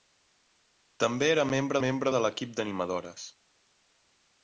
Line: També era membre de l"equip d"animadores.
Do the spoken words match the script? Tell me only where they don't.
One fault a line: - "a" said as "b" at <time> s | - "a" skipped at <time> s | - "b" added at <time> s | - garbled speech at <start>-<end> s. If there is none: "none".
- "membre" added at 1.8 s